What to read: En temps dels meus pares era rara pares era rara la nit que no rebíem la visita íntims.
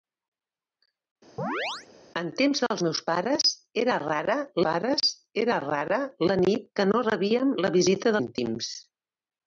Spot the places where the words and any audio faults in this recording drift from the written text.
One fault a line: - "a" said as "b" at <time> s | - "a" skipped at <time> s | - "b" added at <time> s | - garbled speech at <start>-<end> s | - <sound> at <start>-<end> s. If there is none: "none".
- chirp at 1.4-1.9 s